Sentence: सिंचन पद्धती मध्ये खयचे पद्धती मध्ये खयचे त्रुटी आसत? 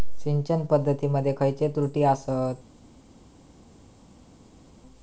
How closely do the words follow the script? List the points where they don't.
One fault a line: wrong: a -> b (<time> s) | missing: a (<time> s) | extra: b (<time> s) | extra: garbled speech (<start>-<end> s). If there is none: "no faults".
missing: पद्धती मध्ये खयचे (1.7 s)